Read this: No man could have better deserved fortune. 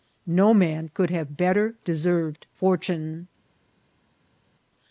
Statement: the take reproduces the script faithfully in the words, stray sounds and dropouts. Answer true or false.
true